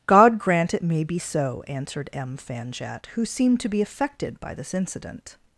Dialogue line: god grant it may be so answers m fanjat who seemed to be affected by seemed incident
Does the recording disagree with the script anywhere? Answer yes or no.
yes